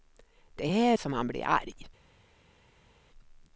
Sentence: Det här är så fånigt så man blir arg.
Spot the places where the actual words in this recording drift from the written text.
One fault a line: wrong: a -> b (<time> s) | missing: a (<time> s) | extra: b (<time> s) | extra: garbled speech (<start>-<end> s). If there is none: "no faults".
missing: är så fånigt (1.0 s)